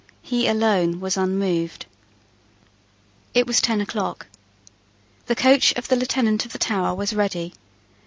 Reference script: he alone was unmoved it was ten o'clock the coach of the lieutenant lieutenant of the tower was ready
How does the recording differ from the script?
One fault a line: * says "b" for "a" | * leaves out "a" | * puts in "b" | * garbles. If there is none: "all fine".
* leaves out "lieutenant"